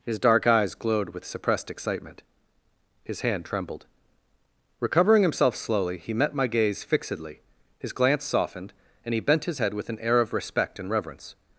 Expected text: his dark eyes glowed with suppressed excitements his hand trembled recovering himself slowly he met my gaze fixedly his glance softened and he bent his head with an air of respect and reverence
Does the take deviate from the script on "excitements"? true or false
true